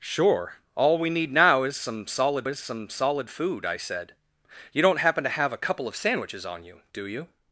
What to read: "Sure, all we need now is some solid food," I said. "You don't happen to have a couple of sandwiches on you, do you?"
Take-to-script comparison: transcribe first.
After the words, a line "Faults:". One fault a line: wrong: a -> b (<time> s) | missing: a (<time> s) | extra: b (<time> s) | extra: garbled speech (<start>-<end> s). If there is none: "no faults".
"Sure, all we need now is some solid is some solid food," I said. "You don't happen to have a couple of sandwiches on you, do you?"
Faults:
extra: is some solid (2.5 s)